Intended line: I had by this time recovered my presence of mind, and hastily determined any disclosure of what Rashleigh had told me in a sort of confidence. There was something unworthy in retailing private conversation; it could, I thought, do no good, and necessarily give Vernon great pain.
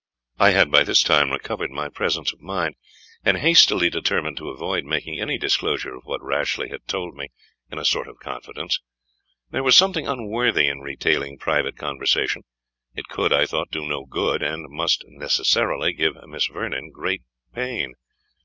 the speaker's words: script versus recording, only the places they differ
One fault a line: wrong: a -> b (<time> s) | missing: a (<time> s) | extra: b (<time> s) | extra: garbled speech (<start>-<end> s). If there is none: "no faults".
extra: to avoid making (4.4 s)
extra: must (14.7 s)
extra: Miss (16.3 s)